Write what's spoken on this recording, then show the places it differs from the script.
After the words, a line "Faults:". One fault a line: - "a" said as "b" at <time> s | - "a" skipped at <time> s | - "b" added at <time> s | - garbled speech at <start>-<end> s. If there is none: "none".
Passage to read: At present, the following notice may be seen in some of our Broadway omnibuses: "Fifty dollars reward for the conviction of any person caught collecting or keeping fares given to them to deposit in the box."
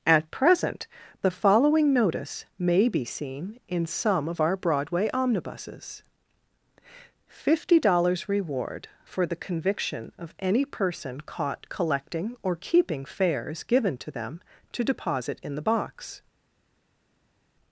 At present, the following notice may be seen in some of our Broadway omnibuses: "Fifty dollars reward for the conviction of any person caught collecting or keeping fares given to them to deposit in the box."
Faults:
none